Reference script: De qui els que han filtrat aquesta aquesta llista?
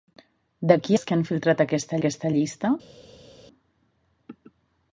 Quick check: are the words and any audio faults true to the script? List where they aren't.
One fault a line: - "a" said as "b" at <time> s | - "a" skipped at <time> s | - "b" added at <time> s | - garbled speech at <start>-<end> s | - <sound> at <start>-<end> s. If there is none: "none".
none